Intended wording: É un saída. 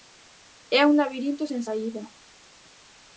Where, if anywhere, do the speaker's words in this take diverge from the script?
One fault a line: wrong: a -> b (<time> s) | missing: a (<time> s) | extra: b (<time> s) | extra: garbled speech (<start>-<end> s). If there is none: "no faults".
extra: labirinto sen (1.0 s)